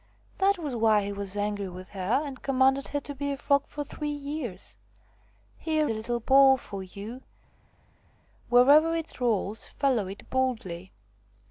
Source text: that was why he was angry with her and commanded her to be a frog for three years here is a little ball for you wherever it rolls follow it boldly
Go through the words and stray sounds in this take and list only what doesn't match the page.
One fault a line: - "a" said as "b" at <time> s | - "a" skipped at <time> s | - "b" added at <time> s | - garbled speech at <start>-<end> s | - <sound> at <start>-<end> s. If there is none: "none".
- "is" skipped at 5.9 s